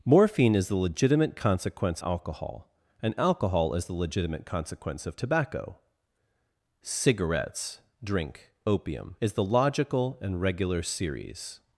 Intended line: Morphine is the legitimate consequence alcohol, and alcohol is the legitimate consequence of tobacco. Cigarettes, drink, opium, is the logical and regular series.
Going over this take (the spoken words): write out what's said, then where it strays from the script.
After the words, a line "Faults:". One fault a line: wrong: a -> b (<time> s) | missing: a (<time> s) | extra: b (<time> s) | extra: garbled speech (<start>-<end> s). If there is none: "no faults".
Morphine is the legitimate consequence alcohol, and alcohol is the legitimate consequence of tobacco. Cigarettes, drink, opium, is the logical and regular series.
Faults:
no faults